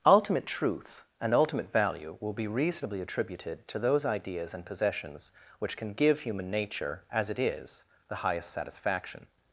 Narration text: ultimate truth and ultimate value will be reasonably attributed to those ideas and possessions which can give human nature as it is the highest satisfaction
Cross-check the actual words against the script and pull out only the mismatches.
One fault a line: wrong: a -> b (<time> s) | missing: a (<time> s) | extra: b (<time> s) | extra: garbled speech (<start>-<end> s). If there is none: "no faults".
no faults